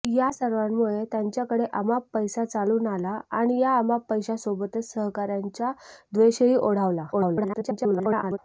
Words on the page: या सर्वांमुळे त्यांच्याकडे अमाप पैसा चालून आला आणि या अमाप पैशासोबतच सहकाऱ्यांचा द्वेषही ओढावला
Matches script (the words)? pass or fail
fail